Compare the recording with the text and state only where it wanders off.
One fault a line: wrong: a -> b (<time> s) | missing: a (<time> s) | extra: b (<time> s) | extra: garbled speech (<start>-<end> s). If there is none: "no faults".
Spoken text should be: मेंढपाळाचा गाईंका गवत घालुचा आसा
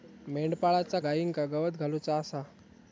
no faults